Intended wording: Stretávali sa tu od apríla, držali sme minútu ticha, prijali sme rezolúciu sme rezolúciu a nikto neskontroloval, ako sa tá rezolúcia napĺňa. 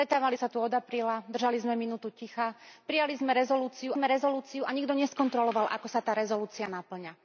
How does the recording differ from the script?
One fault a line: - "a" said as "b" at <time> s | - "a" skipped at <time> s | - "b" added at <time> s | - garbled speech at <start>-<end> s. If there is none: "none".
none